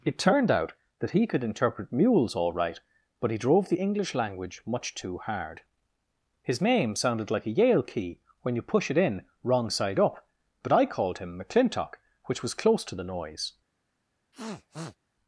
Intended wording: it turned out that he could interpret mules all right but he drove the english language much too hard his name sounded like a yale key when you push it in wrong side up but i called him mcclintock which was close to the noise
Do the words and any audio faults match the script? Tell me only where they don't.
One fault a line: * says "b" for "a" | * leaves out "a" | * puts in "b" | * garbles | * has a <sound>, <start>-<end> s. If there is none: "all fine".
* has a sniff, 14.3-15.0 s